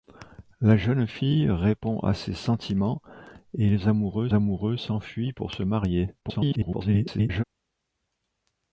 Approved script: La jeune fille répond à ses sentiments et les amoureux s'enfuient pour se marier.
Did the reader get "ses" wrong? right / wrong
right